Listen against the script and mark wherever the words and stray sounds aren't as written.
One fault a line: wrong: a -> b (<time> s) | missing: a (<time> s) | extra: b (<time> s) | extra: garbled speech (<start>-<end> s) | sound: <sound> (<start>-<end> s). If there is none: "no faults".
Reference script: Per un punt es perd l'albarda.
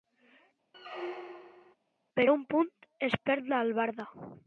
sound: squeak (0.7-1.8 s)